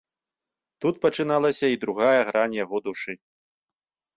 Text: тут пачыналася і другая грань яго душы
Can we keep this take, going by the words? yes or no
yes